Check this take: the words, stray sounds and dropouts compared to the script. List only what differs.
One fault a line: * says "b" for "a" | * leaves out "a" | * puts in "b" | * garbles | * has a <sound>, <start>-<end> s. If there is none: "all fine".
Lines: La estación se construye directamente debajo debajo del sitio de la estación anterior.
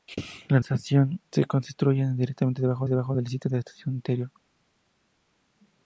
all fine